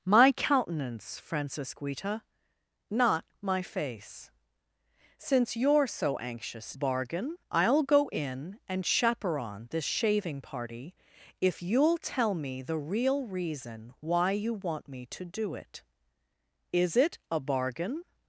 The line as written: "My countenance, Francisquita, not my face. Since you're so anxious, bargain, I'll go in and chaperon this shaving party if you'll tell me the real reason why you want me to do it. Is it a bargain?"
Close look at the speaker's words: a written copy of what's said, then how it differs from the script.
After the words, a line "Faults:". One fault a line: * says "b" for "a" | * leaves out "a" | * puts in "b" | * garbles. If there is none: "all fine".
"My countenance, Francisquita, not my face. Since you're so anxious, bargain, I'll go in and chaperon this shaving party if you'll tell me the real reason why you want me to do it. Is it a bargain?"
Faults:
all fine